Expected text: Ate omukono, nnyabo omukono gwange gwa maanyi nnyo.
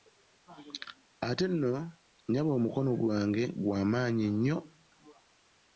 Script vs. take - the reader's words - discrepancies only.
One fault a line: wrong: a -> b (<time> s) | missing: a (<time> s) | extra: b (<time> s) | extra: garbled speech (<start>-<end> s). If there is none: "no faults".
wrong: omukono -> nno (1.5 s)